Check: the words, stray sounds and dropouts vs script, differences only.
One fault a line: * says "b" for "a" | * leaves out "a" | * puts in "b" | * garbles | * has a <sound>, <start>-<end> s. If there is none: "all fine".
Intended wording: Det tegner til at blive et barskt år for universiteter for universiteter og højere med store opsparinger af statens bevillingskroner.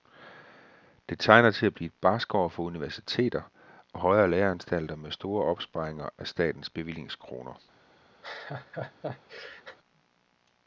* leaves out "for universiteter"
* puts in "læreanstalter"
* has a laugh, 8.2-9.8 s